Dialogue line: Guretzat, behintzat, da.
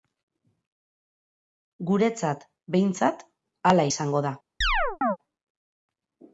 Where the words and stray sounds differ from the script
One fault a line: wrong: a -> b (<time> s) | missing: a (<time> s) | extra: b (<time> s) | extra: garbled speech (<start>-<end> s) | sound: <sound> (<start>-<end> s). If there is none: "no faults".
extra: hala izango (3.7 s)
sound: chirp (4.6-5.2 s)